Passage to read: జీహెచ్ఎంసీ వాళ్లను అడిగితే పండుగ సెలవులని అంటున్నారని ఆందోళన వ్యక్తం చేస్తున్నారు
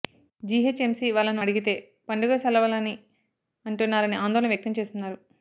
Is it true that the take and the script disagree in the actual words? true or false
false